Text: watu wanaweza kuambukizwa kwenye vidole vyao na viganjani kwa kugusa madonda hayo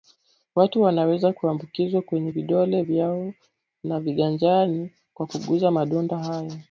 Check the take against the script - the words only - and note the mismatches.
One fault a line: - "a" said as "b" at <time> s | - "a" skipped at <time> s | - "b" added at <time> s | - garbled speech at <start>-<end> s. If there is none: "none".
none